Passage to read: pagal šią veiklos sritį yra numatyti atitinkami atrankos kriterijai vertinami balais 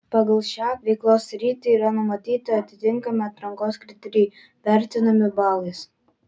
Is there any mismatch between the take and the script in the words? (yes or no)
no